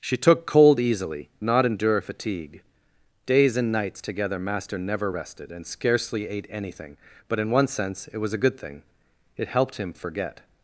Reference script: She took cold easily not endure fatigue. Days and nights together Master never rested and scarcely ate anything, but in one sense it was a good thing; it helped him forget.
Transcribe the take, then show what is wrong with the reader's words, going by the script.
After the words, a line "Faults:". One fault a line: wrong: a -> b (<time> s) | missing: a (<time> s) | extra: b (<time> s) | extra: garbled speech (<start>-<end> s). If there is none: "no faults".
She took cold easily not endure fatigue. Days and nights together Master never rested and scarcely ate anything, but in one sense it was a good thing; it helped him forget.
Faults:
no faults